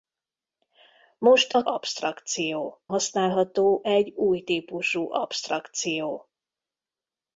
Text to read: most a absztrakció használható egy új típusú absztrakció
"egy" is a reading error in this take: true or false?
false